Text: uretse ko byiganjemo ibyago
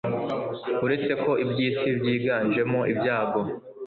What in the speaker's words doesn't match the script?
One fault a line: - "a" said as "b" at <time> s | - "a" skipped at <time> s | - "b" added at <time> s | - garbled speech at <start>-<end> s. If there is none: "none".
- "iby'isi" added at 1.4 s